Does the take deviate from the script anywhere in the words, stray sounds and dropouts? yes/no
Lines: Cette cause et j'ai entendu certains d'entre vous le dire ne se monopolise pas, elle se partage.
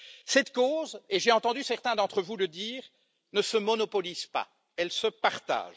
no